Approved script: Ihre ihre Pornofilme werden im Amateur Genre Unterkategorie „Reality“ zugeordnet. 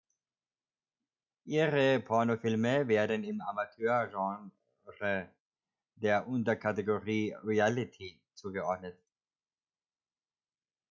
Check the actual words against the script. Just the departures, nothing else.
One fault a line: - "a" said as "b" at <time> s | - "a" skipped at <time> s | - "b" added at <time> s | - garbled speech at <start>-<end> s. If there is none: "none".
- "ihre" skipped at 2.0 s
- "der" added at 6.0 s